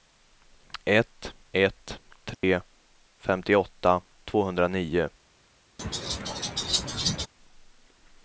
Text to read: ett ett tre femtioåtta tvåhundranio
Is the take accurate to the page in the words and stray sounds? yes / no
no